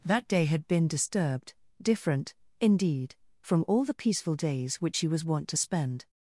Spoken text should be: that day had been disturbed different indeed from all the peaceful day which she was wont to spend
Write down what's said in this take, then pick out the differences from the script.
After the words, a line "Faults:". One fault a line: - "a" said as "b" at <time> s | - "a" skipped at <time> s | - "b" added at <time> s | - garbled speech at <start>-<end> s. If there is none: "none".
that day had been disturbed different indeed from all the peaceful days which she was wont to spend
Faults:
- "day" said as "days" at 4.3 s